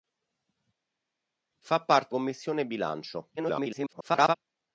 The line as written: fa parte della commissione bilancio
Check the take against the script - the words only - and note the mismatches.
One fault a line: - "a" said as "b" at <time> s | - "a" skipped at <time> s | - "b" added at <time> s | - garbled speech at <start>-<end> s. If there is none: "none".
- "della" skipped at 2.1 s
- garbled speech at 3.4-4.4 s